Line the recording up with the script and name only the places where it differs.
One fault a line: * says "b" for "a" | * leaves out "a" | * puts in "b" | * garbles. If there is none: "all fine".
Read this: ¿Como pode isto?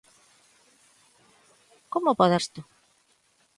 all fine